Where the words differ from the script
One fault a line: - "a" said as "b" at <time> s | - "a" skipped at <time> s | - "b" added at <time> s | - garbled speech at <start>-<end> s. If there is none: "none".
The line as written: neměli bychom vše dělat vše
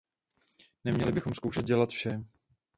- "vše" said as "zkoušet" at 1.3 s